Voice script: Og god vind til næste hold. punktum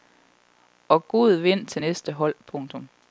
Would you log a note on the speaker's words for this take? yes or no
no